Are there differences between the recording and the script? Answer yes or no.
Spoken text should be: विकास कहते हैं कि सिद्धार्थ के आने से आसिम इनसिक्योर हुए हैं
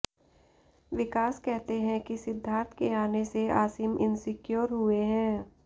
no